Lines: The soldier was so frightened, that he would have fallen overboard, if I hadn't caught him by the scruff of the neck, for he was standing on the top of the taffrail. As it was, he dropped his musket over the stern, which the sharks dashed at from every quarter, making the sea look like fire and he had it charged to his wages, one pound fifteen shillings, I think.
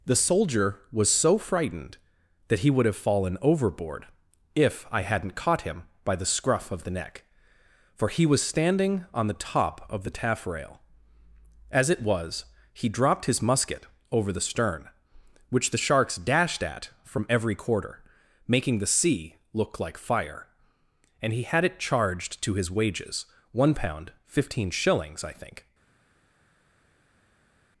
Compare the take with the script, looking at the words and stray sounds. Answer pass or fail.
pass